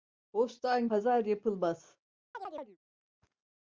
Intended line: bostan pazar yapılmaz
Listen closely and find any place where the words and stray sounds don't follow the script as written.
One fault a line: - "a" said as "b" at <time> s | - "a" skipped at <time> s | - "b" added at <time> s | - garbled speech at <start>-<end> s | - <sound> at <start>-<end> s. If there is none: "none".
- chirp at 2.3-2.8 s